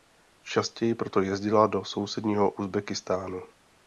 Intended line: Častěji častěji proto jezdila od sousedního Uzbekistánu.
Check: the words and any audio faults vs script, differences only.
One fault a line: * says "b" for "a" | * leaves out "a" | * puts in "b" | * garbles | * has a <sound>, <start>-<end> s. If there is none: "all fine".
* leaves out "častěji"
* says "do" for "od"